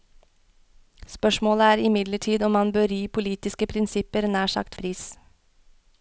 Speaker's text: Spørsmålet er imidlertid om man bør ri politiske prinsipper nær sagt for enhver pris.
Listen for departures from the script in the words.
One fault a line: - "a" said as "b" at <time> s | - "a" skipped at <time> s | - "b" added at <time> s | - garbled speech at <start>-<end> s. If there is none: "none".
- "for enhver" skipped at 4.8 s